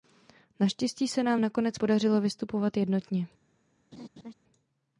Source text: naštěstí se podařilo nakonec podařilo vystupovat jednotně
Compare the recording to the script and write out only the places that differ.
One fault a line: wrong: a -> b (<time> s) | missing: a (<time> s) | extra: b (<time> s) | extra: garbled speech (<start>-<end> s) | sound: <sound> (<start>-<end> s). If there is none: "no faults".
wrong: podařilo -> nám (1.2 s)
sound: laugh (3.9-4.3 s)